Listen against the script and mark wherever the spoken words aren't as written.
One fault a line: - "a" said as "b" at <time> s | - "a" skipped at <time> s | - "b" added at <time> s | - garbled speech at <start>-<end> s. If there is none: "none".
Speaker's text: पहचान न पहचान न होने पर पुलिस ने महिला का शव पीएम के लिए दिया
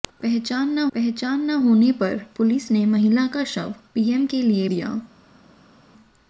none